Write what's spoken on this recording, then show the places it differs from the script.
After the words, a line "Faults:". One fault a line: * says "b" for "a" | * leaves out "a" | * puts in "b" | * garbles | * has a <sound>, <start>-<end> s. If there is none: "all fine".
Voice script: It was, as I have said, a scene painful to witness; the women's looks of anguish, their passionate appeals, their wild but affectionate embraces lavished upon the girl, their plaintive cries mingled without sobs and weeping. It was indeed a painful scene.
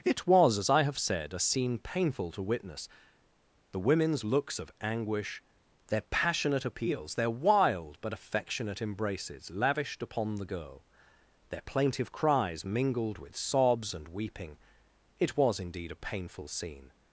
It was, as I have said, a scene painful to witness; the women's looks of anguish, their passionate appeals, their wild but affectionate embraces lavished upon the girl, their plaintive cries mingled with sobs and weeping. It was indeed a painful scene.
Faults:
* says "with" for "without"